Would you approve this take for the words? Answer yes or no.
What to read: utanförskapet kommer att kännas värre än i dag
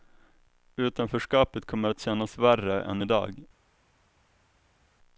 yes